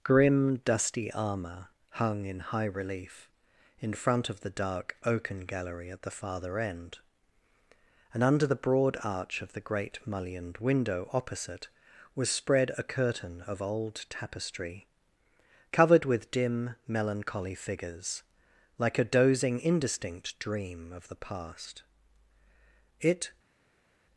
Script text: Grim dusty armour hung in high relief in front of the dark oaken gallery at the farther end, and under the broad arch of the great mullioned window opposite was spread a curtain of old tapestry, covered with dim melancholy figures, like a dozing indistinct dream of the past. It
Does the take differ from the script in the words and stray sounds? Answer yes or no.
no